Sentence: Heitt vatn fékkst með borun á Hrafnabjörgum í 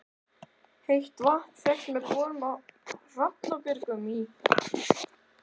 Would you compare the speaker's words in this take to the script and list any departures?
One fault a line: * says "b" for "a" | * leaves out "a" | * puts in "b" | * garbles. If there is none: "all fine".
all fine